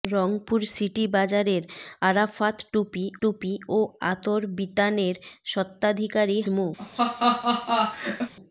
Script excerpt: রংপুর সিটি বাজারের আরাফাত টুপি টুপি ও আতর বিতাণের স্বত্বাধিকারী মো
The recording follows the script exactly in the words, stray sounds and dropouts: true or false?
false